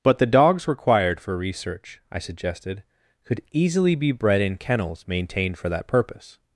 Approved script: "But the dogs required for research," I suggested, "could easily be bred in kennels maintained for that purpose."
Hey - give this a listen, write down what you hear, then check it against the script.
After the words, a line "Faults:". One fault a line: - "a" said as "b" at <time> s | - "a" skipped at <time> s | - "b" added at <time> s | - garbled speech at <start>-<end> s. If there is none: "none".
"But the dogs required for research," I suggested, "could easily be bred in kennels maintained for that purpose."
Faults:
none